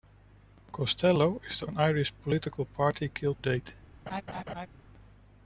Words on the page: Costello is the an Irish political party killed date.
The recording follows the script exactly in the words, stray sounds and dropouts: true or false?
false